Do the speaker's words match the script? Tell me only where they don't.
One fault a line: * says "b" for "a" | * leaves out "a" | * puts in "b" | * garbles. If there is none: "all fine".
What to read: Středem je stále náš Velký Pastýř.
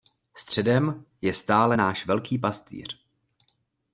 all fine